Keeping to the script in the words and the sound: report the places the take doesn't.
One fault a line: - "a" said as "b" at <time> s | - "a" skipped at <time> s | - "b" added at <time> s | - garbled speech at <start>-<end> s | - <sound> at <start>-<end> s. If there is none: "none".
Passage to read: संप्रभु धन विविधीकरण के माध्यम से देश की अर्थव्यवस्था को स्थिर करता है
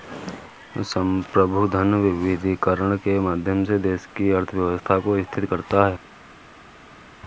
none